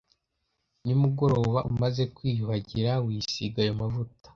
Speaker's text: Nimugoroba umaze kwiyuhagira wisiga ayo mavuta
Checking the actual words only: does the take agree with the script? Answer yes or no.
yes